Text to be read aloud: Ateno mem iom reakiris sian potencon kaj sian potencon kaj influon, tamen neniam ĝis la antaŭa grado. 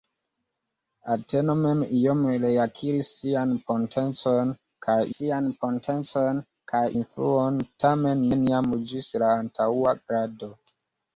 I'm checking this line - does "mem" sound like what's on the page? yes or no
yes